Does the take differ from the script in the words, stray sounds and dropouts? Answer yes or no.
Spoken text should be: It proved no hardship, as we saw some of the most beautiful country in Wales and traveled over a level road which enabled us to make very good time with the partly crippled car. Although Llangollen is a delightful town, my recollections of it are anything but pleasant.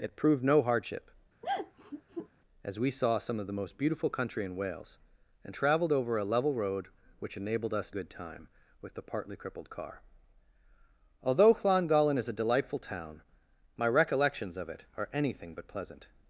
yes